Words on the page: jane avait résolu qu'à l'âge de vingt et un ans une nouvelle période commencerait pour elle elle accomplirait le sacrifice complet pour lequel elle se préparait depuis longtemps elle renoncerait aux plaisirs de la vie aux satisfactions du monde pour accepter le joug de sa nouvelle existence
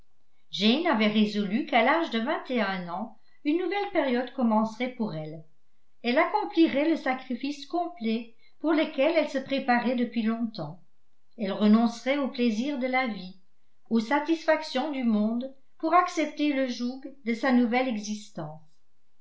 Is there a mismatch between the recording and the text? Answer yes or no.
no